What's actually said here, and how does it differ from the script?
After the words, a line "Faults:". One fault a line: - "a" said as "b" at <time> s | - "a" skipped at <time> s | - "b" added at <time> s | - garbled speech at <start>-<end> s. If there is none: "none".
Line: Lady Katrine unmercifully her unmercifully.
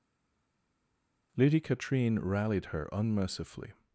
Lady Katrine rallied her unmercifully.
Faults:
- "unmercifully" said as "rallied" at 2.2 s